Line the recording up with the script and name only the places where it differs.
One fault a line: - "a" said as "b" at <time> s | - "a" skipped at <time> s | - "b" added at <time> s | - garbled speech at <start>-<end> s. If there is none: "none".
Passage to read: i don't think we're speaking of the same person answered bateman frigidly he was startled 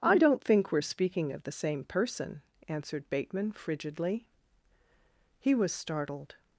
none